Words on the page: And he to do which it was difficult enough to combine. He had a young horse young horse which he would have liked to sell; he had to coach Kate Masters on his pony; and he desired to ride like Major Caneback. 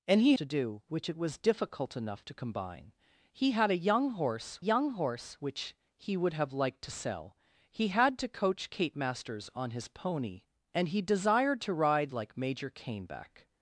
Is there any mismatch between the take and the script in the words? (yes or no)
no